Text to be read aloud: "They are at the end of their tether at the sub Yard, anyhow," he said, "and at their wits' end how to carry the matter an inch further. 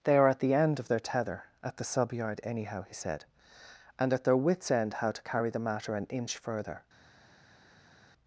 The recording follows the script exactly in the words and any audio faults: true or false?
true